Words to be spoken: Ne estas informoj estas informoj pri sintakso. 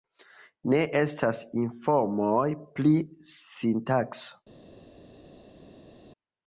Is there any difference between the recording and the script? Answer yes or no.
yes